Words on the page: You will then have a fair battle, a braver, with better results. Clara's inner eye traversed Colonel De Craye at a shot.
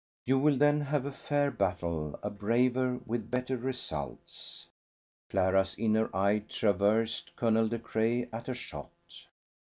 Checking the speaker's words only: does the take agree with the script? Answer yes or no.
yes